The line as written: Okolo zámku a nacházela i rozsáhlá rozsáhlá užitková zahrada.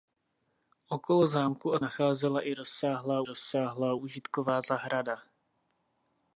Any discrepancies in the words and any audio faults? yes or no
no